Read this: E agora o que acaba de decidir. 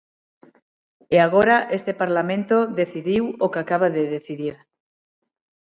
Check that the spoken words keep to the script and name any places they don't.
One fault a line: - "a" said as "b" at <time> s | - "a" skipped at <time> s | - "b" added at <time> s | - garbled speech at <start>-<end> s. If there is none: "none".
- "este Parlamento decidiu" added at 1.8 s